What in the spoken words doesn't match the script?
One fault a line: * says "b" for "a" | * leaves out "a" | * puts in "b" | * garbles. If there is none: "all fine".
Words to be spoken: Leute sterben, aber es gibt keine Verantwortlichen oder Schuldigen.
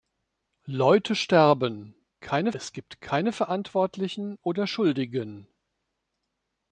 * says "keine" for "aber"